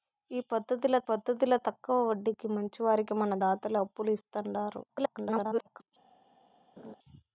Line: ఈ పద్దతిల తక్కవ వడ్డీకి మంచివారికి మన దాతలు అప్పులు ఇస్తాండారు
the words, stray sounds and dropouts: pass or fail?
fail